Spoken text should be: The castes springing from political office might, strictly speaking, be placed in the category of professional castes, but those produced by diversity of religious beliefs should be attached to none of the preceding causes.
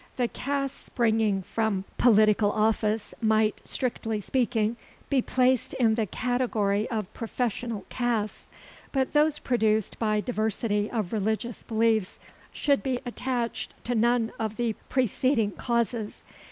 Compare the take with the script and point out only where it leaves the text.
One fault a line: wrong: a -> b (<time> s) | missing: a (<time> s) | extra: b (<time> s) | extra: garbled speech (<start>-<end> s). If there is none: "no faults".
no faults